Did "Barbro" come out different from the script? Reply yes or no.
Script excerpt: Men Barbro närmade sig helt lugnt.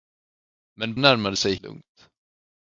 yes